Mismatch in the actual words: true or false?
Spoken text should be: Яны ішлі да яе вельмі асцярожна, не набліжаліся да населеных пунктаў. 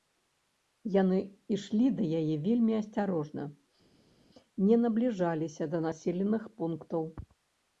false